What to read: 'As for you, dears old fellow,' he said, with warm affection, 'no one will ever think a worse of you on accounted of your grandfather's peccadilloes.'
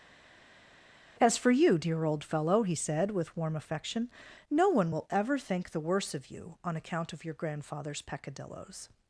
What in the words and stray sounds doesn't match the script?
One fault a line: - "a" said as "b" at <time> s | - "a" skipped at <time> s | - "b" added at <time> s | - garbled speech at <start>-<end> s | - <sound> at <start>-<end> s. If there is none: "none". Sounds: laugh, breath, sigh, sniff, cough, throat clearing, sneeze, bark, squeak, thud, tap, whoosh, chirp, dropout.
- "dears" said as "dear" at 1.8 s
- "a" said as "the" at 5.7 s
- "accounted" said as "account" at 6.8 s